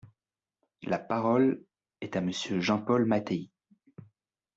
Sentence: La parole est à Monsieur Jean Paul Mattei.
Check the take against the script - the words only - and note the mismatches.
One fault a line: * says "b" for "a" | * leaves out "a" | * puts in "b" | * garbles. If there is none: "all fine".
all fine